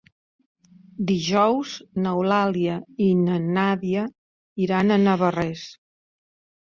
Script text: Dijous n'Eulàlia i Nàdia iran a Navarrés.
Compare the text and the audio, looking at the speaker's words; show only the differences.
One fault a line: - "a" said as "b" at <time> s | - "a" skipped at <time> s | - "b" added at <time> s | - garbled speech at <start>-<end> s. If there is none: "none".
- "na" added at 3.3 s